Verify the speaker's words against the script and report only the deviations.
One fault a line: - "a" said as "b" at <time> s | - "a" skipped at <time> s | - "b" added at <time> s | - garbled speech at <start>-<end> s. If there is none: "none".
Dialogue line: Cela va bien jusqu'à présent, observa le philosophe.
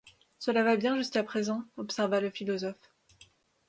none